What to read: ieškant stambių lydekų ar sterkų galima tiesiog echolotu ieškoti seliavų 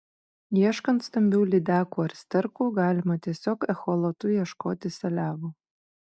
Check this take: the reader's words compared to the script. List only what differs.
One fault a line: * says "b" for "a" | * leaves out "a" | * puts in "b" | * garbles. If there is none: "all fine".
all fine